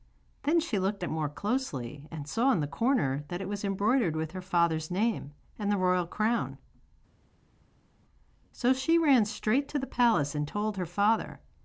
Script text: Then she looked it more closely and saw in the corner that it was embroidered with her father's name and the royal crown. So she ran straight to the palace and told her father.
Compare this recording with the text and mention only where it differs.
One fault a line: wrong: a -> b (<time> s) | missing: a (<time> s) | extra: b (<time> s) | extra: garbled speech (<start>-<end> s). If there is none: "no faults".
no faults